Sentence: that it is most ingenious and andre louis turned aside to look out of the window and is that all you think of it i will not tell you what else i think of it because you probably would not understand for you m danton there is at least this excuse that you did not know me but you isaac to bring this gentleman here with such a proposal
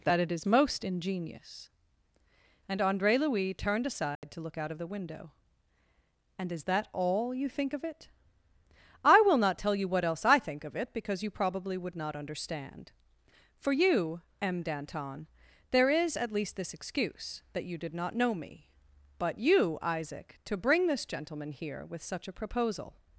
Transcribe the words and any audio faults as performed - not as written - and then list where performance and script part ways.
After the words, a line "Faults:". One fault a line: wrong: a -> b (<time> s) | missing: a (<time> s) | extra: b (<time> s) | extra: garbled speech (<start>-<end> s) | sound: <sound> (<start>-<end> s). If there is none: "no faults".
that it is most ingenious and andre louis turned aside to look out of the window and is that all you think of it i will not tell you what else i think of it because you probably would not understand for you m danton there is at least this excuse that you did not know me but you isaac to bring this gentleman here with such a proposal
Faults:
sound: dropout (4.2-4.2 s)